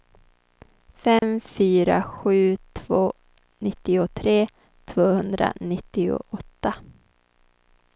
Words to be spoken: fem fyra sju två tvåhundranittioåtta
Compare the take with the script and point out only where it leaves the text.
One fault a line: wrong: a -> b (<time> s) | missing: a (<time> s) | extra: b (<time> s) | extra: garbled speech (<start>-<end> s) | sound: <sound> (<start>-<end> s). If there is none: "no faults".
sound: dropout (1.2-1.2 s)
extra: nittiotre (3.6 s)